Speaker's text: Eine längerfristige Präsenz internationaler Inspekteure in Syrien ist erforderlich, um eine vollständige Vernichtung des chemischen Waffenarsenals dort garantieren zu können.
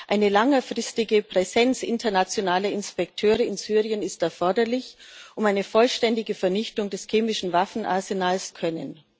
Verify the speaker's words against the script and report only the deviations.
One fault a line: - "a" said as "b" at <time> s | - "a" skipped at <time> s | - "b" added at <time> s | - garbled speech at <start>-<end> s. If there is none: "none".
- "dort garantieren zu" skipped at 8.5 s